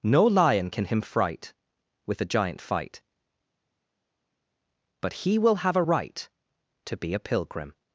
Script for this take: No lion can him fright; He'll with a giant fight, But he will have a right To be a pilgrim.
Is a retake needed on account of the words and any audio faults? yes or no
yes